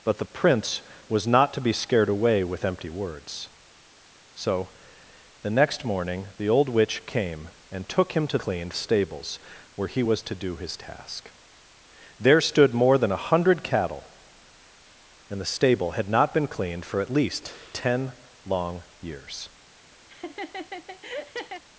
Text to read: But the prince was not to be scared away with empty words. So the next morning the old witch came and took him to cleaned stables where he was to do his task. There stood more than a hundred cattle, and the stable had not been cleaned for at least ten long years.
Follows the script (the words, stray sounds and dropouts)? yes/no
no